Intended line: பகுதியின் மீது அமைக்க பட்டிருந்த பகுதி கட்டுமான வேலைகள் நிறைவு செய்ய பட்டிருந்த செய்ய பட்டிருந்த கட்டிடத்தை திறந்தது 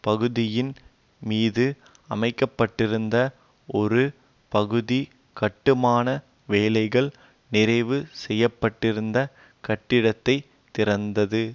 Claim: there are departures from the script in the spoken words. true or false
true